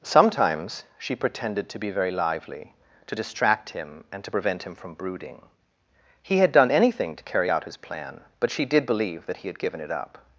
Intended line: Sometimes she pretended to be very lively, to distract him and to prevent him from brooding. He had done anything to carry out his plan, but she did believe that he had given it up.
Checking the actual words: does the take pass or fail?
pass